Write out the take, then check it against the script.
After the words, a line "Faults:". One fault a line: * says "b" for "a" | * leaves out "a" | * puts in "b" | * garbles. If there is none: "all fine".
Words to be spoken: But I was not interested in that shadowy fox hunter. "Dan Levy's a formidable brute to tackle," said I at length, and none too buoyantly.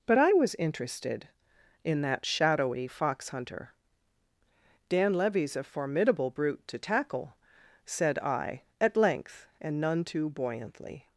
But I was interested in that shadowy fox hunter. "Dan Levy's a formidable brute to tackle," said I at length, and none too buoyantly.
Faults:
* leaves out "not"